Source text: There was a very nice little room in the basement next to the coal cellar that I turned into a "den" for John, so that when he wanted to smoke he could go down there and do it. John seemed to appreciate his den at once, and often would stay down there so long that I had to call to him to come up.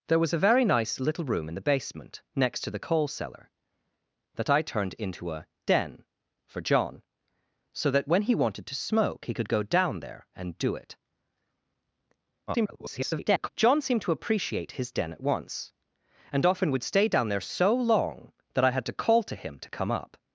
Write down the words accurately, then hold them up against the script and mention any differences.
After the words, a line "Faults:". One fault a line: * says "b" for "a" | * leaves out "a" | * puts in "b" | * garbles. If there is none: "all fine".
There was a very nice little room in the basement next to the coal cellar that I turned into a "den" for John, so that when he wanted to smoke he could go down there and do it. [garbled] John seemed to appreciate his den at once, and often would stay down there so long that I had to call to him to come up.
Faults:
* garbles